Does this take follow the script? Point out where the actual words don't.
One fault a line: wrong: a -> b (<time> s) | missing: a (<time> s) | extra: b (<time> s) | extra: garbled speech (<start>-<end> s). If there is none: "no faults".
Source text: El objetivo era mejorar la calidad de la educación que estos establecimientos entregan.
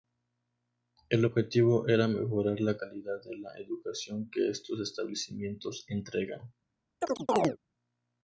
no faults